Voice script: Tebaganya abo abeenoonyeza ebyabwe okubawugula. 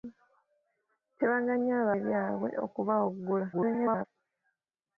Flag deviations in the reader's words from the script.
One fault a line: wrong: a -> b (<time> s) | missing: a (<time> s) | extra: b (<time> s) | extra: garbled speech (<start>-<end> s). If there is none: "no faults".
missing: abeenoonyeza (1.9 s)
extra: garbled speech (3.5-4.0 s)